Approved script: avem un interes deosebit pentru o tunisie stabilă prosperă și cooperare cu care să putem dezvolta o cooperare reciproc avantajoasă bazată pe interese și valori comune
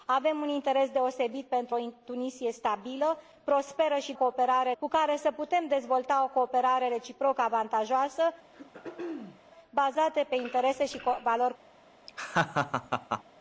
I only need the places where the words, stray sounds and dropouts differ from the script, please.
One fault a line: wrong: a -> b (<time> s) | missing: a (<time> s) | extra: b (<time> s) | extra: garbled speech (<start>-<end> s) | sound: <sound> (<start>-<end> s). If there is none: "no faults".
sound: throat clearing (8.5-9.4 s)
sound: laugh (12.1-13.2 s)